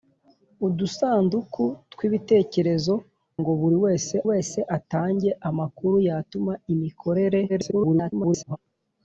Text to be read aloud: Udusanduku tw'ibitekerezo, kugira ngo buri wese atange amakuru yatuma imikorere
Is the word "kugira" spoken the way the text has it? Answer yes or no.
no